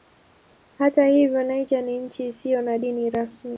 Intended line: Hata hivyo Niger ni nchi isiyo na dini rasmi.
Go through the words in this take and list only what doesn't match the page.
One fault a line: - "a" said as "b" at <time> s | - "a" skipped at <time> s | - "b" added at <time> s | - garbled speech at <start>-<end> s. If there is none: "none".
none